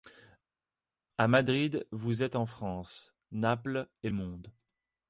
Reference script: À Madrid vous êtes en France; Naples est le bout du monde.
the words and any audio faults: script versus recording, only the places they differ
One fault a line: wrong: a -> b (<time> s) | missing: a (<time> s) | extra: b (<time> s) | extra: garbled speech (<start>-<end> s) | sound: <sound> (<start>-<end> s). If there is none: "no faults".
missing: le bout du (4.1 s)